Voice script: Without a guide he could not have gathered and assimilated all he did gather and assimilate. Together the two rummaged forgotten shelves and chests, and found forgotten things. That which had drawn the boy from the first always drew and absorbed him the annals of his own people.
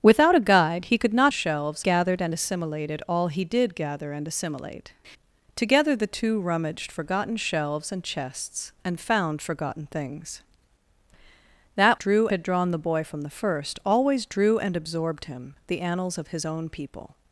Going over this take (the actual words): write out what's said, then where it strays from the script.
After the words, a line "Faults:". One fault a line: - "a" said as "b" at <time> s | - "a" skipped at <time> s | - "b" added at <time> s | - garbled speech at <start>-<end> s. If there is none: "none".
Without a guide he could not shelves gathered and assimilated all he did gather and assimilate. Together the two rummaged forgotten shelves and chests, and found forgotten things. That drew had drawn the boy from the first always drew and absorbed him the annals of his own people.
Faults:
- "have" said as "shelves" at 1.3 s
- "which" said as "drew" at 11.9 s